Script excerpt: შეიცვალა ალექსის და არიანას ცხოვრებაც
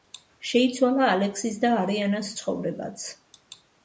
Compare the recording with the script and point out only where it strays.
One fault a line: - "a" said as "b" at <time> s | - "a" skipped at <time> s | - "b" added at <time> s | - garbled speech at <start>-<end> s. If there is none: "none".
none